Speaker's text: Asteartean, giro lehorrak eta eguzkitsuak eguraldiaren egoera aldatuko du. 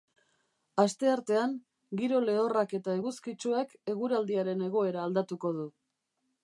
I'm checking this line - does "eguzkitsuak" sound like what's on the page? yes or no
yes